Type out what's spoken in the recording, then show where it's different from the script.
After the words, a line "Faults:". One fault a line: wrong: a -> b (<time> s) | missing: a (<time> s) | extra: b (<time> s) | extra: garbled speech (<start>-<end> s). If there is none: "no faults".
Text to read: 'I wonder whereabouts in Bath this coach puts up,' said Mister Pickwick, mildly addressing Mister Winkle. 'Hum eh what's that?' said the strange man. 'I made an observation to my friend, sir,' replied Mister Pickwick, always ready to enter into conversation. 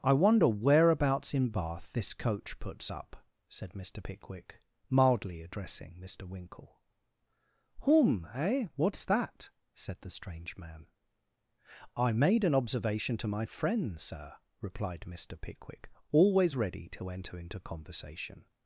'I wonder whereabouts in Bath this coach puts up,' said Mister Pickwick, mildly addressing Mister Winkle. 'Hum eh what's that?' said the strange man. 'I made an observation to my friend, sir,' replied Mister Pickwick, always ready to enter into conversation.
Faults:
no faults